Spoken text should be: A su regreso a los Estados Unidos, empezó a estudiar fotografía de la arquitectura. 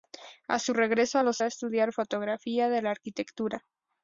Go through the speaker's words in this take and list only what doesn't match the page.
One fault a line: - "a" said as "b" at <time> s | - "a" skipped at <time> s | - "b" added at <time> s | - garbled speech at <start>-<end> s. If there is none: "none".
- "Estados Unidos empezó" skipped at 1.4 s